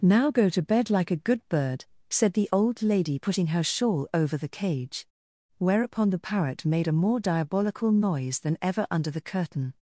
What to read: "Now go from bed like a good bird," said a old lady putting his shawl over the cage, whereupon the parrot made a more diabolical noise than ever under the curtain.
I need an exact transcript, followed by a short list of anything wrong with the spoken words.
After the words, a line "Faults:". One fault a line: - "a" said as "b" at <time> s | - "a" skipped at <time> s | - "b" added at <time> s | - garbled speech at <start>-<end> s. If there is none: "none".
"Now go to bed like a good bird," said the old lady putting her shawl over the cage, whereupon the parrot made a more diabolical noise than ever under the curtain.
Faults:
- "from" said as "to" at 0.5 s
- "a" said as "the" at 2.3 s
- "his" said as "her" at 3.5 s